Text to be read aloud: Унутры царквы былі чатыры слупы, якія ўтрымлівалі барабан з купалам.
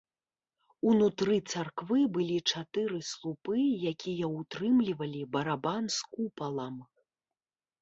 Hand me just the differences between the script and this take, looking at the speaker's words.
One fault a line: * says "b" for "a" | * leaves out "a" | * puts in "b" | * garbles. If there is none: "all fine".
all fine